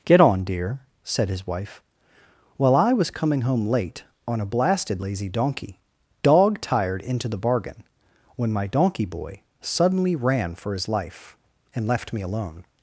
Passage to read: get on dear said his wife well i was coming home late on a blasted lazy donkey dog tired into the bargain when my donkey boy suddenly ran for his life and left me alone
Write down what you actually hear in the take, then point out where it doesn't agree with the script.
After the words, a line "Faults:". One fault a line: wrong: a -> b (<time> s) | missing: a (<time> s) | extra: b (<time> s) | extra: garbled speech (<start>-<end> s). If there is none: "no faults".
get on dear said his wife well i was coming home late on a blasted lazy donkey dog tired into the bargain when my donkey boy suddenly ran for his life and left me alone
Faults:
no faults